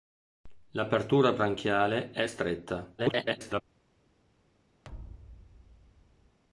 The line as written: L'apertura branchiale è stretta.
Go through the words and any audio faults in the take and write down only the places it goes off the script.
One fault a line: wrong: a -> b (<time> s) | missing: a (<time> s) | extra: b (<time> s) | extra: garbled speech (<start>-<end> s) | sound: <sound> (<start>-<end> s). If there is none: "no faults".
extra: garbled speech (3.0-3.6 s)
sound: thud (4.8-6.4 s)